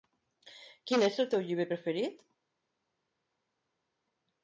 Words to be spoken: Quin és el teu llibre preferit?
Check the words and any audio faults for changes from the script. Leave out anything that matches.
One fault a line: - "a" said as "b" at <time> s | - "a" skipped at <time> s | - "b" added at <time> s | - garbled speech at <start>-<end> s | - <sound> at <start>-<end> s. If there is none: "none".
none